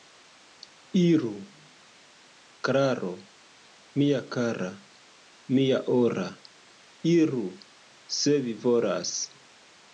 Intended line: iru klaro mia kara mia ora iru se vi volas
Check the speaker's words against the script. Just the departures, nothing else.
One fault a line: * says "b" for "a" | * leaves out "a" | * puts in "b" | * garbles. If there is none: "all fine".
all fine